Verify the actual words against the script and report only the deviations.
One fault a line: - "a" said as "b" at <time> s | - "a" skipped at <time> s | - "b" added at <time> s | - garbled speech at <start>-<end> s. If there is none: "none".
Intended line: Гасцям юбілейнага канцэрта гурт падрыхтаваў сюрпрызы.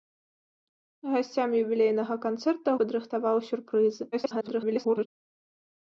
- "гурт" skipped at 2.7 s
- garbled speech at 4.1-5.1 s